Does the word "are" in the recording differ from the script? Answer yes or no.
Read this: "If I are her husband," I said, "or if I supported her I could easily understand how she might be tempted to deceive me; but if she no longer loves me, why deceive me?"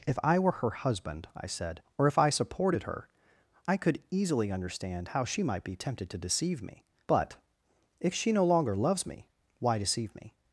yes